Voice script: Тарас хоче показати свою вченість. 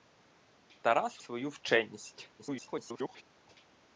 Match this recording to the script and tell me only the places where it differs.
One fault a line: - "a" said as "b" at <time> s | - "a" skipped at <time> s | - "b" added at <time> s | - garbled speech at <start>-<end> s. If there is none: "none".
- "хоче показати" skipped at 1.2 s
- garbled speech at 2.4-3.2 s